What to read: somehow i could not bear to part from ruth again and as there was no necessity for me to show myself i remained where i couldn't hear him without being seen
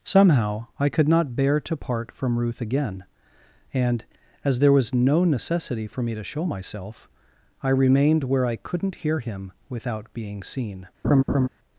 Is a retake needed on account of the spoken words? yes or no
no